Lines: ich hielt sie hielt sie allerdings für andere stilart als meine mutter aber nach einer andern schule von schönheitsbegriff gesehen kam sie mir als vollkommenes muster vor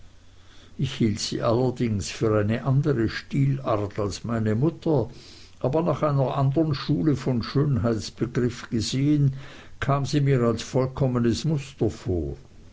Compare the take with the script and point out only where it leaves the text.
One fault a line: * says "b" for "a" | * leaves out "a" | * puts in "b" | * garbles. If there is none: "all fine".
* leaves out "hielt sie"
* puts in "eine"